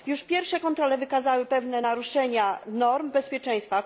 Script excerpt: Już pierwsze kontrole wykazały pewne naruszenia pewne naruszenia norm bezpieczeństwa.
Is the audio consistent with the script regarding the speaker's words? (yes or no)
no